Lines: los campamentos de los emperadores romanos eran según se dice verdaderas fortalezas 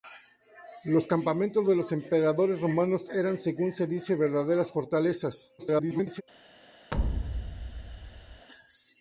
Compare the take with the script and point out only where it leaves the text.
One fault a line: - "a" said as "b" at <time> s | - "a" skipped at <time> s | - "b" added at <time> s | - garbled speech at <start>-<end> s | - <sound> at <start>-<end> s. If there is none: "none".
- garbled speech at 5.6-6.2 s
- thud at 6.9-8.5 s